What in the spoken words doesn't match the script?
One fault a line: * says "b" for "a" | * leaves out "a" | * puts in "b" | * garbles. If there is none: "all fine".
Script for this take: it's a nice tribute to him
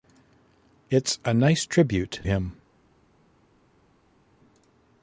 * leaves out "to"